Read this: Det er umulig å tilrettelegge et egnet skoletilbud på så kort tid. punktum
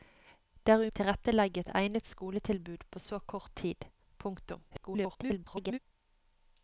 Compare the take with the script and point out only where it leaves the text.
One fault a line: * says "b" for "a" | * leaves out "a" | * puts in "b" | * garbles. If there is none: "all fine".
* leaves out "umulig"
* garbles